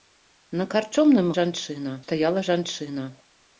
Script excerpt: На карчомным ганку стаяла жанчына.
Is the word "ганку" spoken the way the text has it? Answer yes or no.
no